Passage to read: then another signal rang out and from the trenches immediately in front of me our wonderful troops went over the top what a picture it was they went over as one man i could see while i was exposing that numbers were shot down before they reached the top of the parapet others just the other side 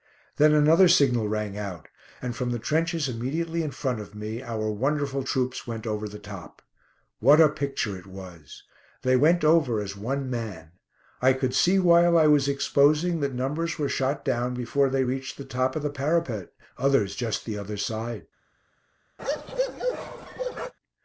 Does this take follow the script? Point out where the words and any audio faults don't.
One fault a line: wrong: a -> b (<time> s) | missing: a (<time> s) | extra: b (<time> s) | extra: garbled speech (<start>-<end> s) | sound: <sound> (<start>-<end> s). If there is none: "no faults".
sound: bark (19.2-20.7 s)